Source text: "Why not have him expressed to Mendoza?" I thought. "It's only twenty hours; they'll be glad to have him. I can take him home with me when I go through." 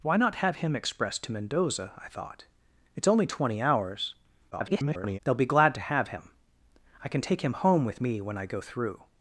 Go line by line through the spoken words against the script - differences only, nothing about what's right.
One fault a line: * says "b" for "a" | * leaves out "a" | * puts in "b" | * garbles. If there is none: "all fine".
* garbles